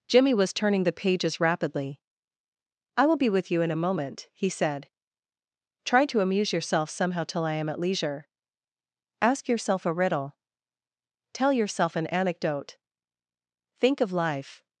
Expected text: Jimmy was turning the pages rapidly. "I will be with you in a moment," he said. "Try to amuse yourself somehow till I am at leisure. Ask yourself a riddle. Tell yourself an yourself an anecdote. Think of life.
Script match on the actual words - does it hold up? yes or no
no